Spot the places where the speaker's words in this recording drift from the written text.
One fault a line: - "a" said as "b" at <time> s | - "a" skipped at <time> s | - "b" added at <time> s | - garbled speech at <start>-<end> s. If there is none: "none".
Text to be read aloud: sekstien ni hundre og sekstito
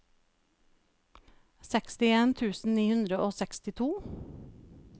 - "tusen" added at 2.4 s